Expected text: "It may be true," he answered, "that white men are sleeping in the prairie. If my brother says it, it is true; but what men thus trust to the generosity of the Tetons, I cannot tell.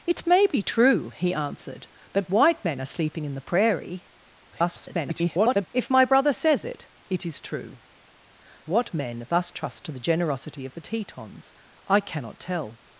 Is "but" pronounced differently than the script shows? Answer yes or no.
yes